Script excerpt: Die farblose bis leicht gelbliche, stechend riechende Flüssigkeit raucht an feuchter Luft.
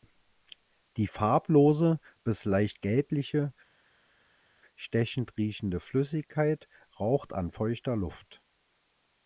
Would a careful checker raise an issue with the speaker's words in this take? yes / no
no